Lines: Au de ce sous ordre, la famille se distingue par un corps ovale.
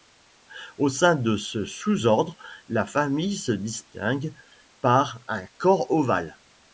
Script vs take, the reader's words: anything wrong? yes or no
yes